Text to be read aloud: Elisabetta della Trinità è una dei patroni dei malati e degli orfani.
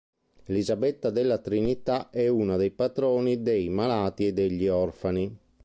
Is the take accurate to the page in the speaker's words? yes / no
yes